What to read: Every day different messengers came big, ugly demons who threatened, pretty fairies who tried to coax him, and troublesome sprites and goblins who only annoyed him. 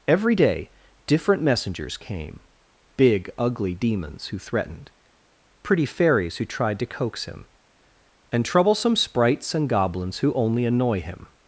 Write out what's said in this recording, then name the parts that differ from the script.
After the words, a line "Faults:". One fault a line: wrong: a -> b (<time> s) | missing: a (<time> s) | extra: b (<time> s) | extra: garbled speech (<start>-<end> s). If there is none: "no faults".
Every day different messengers came big, ugly demons who threatened, pretty fairies who tried to coax him, and troublesome sprites and goblins who only annoy him.
Faults:
wrong: annoyed -> annoy (10.6 s)